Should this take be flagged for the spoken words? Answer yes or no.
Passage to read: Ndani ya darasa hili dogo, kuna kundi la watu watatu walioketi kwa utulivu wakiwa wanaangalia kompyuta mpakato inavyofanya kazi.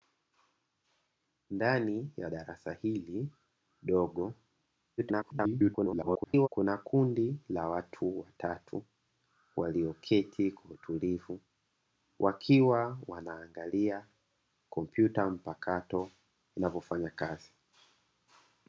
yes